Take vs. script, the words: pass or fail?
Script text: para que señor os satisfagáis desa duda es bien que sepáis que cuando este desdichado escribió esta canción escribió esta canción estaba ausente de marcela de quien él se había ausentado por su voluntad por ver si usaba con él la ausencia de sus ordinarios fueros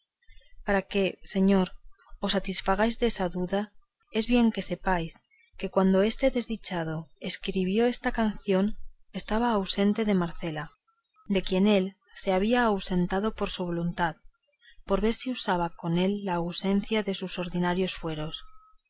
fail